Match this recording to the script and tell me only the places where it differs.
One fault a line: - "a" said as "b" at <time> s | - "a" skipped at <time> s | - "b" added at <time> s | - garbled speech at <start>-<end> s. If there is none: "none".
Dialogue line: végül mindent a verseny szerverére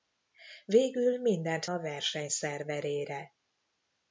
none